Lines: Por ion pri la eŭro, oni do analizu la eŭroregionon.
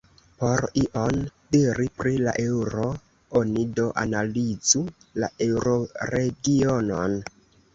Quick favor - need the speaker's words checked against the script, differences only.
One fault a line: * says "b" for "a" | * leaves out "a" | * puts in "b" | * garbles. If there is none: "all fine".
* puts in "diri"